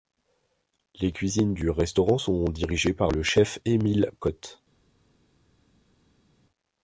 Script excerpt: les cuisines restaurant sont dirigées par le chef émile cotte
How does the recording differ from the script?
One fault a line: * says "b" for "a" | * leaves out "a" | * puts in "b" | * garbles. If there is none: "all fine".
* puts in "du"